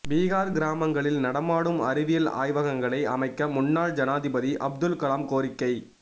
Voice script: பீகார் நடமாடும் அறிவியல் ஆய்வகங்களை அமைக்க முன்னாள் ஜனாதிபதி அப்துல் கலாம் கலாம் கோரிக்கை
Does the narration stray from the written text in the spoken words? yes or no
yes